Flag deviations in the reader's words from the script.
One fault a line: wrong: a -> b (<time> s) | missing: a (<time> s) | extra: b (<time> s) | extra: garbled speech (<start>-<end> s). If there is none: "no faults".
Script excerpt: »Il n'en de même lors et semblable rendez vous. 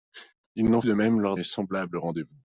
no faults